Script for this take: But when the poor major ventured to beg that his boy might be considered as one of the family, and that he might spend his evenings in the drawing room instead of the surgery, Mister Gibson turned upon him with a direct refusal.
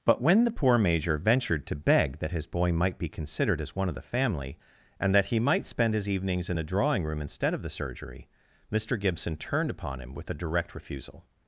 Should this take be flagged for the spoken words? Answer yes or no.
no